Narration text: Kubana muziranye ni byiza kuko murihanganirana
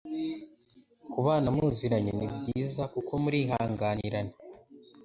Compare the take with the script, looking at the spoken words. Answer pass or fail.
pass